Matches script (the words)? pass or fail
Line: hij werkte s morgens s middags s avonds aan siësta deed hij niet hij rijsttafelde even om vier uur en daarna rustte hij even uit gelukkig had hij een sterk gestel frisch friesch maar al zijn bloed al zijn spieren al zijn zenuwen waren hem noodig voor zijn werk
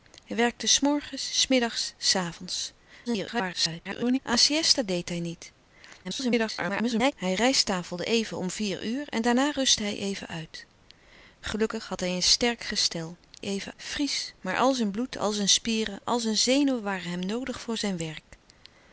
fail